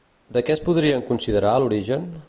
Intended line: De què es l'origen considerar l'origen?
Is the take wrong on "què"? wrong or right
right